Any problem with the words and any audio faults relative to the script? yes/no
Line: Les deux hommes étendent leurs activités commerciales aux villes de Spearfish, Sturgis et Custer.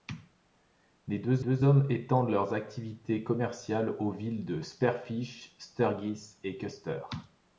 yes